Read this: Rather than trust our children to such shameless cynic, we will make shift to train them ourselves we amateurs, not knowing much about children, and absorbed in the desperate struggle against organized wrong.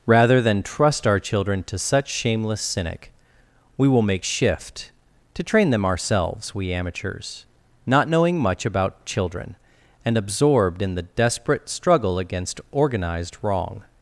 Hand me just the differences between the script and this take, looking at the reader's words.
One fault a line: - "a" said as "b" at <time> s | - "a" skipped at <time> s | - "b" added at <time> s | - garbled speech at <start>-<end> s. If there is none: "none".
none